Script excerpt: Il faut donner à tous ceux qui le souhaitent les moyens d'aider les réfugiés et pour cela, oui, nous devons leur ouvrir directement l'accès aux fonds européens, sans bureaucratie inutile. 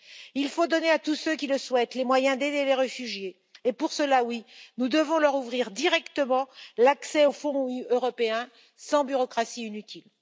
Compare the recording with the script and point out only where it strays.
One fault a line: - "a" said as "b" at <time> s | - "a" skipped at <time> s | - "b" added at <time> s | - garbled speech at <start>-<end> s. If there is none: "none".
none